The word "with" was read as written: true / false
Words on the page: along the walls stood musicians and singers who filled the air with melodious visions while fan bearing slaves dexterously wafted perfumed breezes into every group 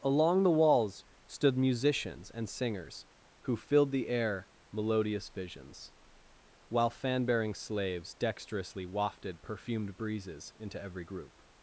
false